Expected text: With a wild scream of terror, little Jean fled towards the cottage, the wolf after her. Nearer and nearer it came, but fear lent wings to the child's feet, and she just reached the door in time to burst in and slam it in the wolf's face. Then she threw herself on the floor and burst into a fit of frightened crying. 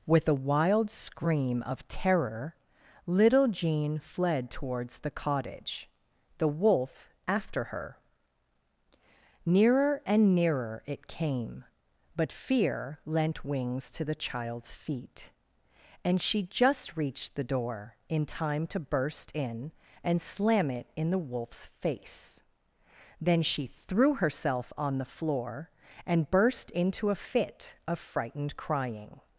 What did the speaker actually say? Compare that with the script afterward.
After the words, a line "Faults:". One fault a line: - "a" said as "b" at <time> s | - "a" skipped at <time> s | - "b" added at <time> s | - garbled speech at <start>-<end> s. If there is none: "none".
With a wild scream of terror, little Jean fled towards the cottage, the wolf after her. Nearer and nearer it came, but fear lent wings to the child's feet, and she just reached the door in time to burst in and slam it in the wolf's face. Then she threw herself on the floor and burst into a fit of frightened crying.
Faults:
none